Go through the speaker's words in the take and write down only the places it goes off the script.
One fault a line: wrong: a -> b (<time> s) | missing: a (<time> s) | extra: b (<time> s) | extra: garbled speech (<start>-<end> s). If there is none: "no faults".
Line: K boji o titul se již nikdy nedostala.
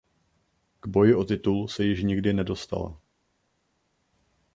no faults